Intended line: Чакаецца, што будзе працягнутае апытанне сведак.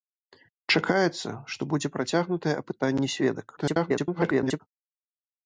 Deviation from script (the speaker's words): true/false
true